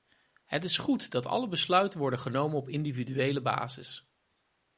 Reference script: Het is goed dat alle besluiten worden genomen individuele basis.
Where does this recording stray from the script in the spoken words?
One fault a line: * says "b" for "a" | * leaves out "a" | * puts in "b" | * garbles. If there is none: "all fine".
* puts in "op"